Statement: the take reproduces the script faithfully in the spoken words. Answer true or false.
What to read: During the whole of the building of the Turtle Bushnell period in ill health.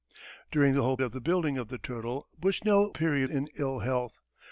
true